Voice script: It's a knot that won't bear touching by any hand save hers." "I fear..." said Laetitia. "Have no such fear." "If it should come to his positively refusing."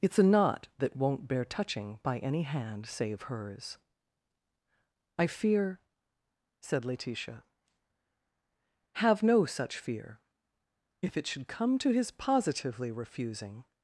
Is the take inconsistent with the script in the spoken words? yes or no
no